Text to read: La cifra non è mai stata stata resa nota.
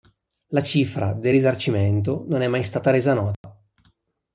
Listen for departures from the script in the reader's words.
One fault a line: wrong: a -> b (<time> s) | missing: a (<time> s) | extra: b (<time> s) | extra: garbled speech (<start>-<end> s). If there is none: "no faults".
extra: del risarcimento (1.1 s)
missing: stata (2.9 s)